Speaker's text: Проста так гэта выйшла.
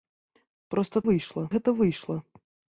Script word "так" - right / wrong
wrong